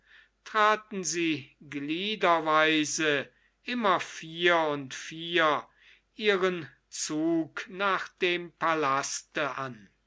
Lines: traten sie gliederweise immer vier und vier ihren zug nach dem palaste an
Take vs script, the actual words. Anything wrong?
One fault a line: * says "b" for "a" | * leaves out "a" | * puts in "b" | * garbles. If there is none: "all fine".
all fine